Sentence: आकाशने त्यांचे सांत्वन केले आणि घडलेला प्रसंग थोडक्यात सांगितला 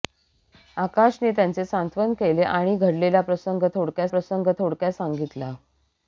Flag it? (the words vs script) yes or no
yes